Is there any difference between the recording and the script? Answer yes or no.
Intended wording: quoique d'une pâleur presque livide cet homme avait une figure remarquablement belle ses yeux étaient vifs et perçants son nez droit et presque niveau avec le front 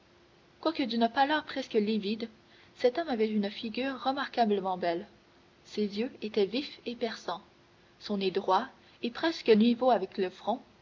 no